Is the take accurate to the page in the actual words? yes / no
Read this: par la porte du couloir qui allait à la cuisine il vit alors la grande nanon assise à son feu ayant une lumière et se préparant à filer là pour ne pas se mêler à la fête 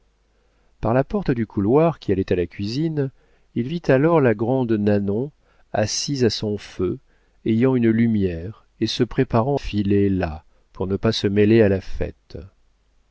no